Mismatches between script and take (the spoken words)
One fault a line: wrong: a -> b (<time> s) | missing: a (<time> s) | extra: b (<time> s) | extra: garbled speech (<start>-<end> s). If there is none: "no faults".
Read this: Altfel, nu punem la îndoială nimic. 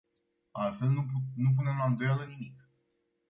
no faults